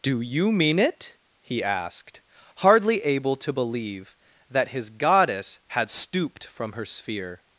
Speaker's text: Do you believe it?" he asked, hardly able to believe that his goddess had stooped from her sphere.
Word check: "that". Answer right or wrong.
right